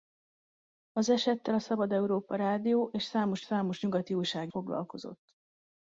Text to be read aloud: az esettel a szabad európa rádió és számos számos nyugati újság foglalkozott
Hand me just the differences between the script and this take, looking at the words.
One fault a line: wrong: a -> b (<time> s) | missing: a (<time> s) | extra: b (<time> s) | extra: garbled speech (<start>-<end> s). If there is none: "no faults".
no faults